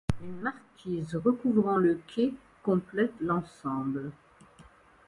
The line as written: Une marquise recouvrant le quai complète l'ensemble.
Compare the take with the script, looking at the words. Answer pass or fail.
pass